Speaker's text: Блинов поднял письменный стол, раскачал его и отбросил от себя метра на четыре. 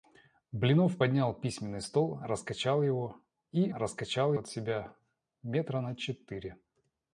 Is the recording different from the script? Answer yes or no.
yes